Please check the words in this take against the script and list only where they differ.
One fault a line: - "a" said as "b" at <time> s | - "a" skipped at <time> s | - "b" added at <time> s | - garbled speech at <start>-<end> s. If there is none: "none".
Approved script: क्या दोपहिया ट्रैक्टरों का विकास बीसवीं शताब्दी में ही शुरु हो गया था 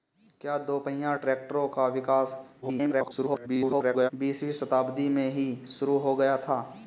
- garbled speech at 2.6-4.1 s